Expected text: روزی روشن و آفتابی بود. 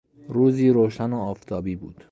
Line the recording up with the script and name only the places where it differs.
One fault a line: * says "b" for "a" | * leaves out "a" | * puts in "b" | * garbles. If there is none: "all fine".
all fine